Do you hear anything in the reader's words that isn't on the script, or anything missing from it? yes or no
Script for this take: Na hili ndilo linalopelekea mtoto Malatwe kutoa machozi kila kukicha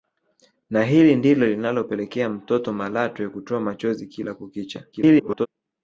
yes